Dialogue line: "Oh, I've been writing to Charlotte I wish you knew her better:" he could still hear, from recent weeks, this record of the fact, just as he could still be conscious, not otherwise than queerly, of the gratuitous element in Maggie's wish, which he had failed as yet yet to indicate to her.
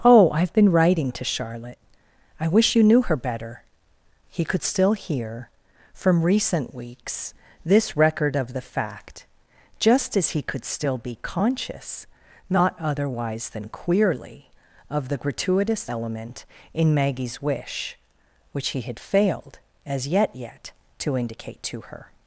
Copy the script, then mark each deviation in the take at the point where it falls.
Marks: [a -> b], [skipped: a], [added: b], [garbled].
"Oh, I've been writing to Charlotte I wish you knew her better:" he could still hear, from recent weeks, this record of the fact, just as he could still be conscious, not otherwise than queerly, of the gratuitous element in Maggie's wish, which he had failed as yet yet to indicate to her.